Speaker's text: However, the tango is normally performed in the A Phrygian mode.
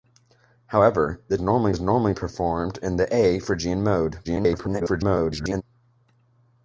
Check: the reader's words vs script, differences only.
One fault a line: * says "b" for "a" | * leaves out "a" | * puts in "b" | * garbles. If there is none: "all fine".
* says "normally" for "tango"
* garbles